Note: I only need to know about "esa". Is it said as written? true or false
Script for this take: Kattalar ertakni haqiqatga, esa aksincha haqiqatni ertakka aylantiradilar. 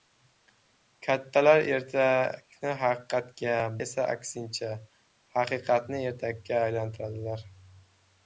true